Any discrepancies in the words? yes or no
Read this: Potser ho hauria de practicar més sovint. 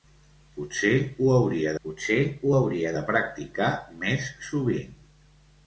yes